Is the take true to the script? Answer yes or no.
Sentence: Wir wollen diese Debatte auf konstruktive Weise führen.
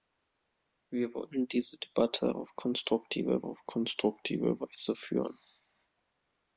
no